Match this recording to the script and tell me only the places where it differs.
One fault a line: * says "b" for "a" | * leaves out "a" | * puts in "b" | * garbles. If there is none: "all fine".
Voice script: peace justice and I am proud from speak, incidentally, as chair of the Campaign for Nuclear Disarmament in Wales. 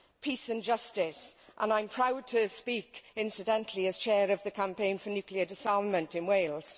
* puts in "and"
* says "to" for "from"